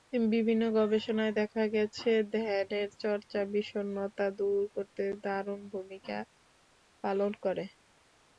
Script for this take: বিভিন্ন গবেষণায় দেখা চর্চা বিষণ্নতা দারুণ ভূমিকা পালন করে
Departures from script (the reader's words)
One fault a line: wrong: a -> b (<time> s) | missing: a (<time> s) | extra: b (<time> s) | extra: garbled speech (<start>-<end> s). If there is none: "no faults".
extra: গেছে ধ্যানের (1.8 s)
extra: দূর করতে (4.4 s)